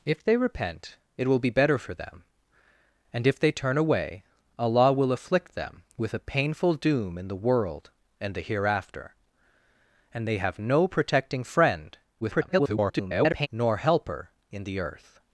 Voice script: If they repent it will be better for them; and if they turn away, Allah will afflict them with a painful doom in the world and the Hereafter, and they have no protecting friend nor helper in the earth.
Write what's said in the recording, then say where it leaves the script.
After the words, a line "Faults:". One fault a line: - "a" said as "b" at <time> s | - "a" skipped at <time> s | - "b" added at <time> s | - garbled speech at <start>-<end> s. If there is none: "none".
If they repent it will be better for them; and if they turn away, Allah will afflict them with a painful doom in the world and the Hereafter, and they have no protecting friend [garbled] nor helper in the earth.
Faults:
- garbled speech at 12.2-13.5 s